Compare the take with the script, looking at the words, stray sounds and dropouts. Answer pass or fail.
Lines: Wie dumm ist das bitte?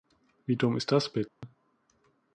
fail